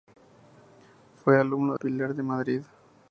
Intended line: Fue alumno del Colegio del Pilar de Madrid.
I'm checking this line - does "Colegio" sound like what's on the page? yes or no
no